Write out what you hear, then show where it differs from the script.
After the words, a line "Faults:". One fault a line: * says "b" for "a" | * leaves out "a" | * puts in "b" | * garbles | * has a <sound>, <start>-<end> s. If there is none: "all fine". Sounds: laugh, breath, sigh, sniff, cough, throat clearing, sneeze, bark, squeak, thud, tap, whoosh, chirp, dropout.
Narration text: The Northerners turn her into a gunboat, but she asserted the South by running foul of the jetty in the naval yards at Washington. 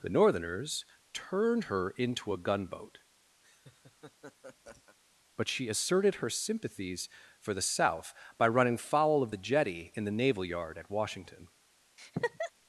The Northerners turned her into a gunboat, but she asserted her sympathies for the South by running foul of the jetty in the naval yard at Washington.
Faults:
* says "turned" for "turn"
* has a laugh, 3.4-5.0 s
* puts in "her sympathies for"
* says "yard" for "yards"
* has a laugh, 12.0-12.5 s